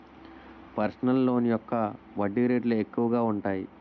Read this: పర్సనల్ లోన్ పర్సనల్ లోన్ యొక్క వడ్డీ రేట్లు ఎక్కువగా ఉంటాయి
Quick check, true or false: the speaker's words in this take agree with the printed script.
false